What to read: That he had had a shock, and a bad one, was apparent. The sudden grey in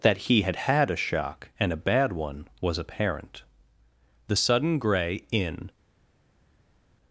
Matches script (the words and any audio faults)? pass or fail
pass